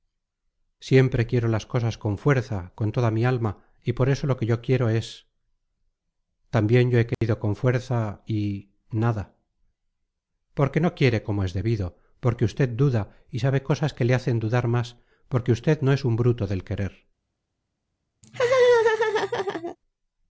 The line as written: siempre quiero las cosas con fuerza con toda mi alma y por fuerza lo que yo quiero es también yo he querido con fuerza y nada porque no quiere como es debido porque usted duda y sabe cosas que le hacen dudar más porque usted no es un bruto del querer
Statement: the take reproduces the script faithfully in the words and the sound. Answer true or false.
false